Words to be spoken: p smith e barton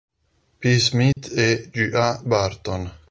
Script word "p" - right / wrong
right